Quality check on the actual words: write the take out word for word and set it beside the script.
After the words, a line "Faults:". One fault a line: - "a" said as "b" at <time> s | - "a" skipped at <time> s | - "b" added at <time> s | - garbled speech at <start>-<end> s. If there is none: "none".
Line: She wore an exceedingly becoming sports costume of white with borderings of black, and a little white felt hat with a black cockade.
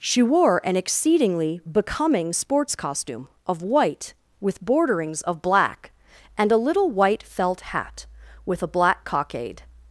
She wore an exceedingly becoming sports costume of white with borderings of black, and a little white felt hat with a black cockade.
Faults:
none